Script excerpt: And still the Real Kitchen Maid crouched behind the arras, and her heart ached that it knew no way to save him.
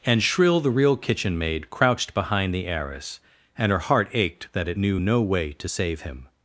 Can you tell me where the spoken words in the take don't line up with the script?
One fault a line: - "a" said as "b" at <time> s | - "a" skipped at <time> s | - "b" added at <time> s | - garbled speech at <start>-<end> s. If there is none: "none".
- "still" said as "shrill" at 0.2 s